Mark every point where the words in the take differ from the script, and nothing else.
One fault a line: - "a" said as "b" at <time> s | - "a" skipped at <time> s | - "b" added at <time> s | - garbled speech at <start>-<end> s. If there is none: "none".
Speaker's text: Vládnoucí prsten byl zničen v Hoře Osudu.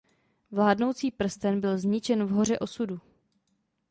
none